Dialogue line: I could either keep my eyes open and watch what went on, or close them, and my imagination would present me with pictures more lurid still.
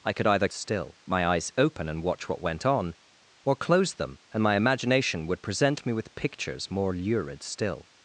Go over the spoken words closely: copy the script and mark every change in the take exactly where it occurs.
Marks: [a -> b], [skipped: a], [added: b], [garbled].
I could either [keep -> still] my eyes open and watch what went on, or close them, and my imagination would present me with pictures more lurid still.